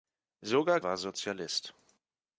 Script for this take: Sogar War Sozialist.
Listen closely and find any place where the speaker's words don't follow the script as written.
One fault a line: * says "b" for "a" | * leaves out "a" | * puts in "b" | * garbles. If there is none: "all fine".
all fine